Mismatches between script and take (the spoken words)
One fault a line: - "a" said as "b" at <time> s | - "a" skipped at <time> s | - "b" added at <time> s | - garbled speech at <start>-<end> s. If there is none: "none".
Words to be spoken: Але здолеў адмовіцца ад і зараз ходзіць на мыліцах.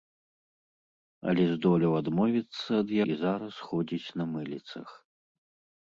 none